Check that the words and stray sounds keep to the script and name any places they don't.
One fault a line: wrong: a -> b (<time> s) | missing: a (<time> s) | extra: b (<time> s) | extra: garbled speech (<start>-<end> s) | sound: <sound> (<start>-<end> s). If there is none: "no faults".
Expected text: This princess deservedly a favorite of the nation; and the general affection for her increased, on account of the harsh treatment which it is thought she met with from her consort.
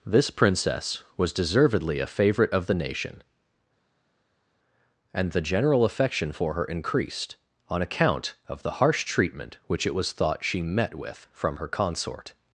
extra: was (1.1 s)
wrong: is -> was (9.9 s)